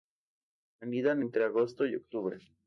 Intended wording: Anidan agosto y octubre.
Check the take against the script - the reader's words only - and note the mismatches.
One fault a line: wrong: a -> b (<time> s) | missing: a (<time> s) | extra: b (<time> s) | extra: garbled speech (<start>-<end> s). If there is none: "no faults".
extra: entre (1.2 s)